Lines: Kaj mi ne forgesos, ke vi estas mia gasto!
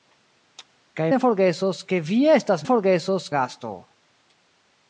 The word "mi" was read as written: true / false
false